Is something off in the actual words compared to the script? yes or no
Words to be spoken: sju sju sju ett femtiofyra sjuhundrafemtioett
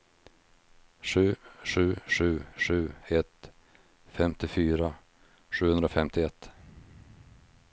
yes